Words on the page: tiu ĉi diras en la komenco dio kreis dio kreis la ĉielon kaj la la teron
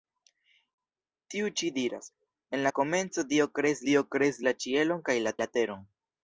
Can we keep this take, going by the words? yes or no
yes